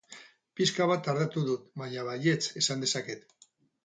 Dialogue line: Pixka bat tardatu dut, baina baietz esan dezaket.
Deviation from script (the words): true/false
false